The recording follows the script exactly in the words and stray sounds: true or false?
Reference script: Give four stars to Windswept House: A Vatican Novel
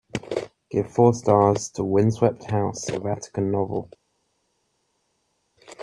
true